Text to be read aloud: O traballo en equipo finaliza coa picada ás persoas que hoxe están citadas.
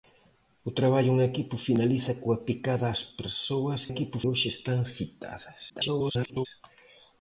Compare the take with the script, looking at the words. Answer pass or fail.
fail